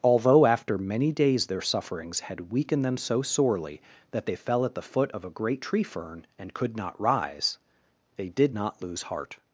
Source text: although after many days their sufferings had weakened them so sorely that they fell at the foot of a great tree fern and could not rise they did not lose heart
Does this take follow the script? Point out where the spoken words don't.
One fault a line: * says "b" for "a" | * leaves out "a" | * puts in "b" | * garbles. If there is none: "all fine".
all fine